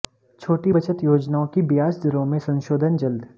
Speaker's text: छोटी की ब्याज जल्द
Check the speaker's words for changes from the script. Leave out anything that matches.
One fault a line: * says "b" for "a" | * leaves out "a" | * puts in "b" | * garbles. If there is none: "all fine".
* puts in "बचत योजनाओं"
* puts in "दरों में संशोधन"